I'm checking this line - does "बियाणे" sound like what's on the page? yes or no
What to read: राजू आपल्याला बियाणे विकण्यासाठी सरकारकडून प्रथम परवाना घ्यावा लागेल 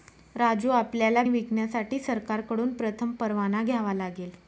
no